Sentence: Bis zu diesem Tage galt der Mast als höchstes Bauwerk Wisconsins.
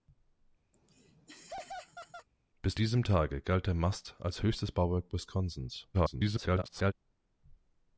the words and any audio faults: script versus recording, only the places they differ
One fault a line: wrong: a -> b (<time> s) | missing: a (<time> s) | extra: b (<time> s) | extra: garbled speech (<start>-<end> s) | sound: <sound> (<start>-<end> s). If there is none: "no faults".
sound: laugh (0.7-2.3 s)
missing: zu (2.8 s)
extra: garbled speech (5.9-6.9 s)